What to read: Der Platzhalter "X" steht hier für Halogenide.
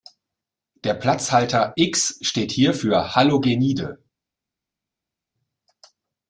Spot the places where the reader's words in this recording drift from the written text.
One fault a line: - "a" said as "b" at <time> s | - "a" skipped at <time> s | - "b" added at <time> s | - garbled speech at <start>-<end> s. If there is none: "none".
none